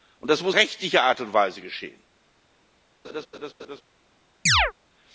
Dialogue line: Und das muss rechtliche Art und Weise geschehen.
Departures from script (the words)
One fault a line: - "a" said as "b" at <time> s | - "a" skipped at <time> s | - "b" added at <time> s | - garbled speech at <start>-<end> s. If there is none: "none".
none